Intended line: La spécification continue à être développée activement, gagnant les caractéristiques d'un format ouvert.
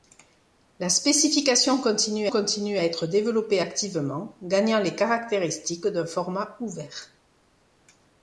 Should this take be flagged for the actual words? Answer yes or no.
yes